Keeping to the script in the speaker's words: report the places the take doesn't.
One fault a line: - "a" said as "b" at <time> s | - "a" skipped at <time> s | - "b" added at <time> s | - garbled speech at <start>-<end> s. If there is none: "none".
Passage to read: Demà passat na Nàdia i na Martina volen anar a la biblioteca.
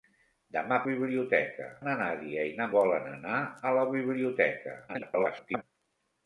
- "passat" said as "biblioteca" at 0.9 s
- "Martina" skipped at 2.7 s
- garbled speech at 4.9-5.6 s